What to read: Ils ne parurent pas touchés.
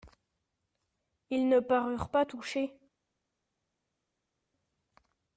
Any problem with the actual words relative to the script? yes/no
no